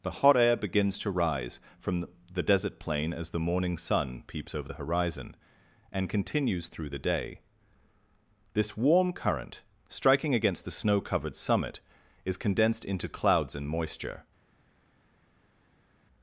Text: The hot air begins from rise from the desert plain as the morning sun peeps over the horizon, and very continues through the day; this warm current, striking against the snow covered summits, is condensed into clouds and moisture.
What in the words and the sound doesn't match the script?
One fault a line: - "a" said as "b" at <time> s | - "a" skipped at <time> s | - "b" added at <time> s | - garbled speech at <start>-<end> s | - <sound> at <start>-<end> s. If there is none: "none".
- "from" said as "to" at 1.0 s
- "very" skipped at 6.1 s
- "summits" said as "summit" at 11.4 s